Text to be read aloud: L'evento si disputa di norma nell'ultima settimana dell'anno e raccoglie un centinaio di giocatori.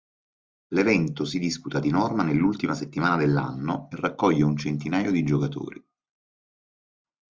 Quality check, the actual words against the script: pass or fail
pass